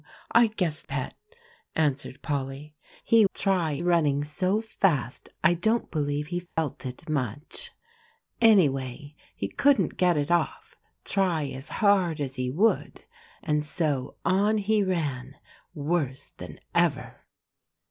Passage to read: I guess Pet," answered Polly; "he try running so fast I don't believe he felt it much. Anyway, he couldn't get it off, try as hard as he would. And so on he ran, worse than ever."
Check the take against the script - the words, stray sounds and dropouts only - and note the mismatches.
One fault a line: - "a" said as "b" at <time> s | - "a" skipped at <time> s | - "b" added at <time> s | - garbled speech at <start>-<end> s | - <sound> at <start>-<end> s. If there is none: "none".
- dropout at 6.5-6.6 s